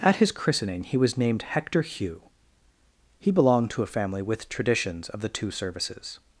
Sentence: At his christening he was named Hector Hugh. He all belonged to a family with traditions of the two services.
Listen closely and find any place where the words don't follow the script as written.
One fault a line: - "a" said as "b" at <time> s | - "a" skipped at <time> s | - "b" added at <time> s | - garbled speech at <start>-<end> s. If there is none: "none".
- "all" skipped at 3.3 s